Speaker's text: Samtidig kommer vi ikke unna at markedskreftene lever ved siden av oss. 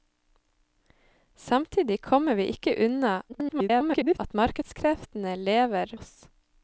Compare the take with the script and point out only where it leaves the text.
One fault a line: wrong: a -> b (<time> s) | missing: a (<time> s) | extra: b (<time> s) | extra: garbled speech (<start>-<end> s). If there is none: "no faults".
extra: garbled speech (3.3-4.2 s)
missing: ved siden av (5.9 s)